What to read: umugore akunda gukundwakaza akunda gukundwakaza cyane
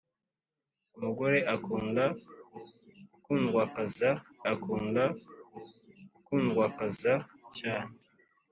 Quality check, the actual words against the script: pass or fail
pass